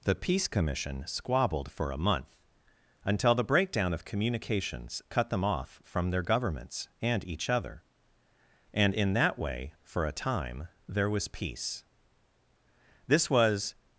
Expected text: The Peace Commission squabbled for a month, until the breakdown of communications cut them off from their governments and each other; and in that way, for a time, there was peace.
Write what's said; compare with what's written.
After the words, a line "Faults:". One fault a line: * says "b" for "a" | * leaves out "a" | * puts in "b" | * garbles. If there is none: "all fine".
The Peace Commission squabbled for a month, until the breakdown of communications cut them off from their governments and each other; and in that way, for a time, there was peace. This was
Faults:
* puts in "This was"